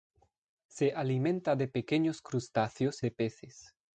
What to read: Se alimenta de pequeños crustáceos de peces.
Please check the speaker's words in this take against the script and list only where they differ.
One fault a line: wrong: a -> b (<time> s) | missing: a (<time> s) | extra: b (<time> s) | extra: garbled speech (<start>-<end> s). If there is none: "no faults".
no faults